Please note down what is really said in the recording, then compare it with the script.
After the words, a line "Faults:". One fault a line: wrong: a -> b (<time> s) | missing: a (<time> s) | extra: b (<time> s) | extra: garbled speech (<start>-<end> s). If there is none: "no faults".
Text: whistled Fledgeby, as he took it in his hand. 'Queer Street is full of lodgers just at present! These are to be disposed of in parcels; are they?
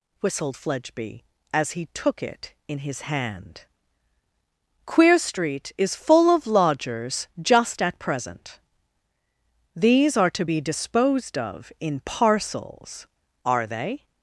whistled Fledgeby, as he took it in his hand. 'Queer Street is full of lodgers just at present! These are to be disposed of in parcels; are they?
Faults:
no faults